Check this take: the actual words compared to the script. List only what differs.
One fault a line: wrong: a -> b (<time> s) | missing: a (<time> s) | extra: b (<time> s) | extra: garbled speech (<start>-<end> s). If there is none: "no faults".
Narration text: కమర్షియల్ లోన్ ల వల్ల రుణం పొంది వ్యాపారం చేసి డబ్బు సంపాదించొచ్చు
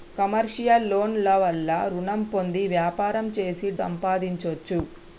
missing: డబ్బు (3.7 s)